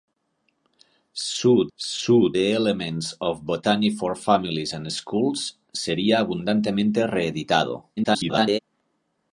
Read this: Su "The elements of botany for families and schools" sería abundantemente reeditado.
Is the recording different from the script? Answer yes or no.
yes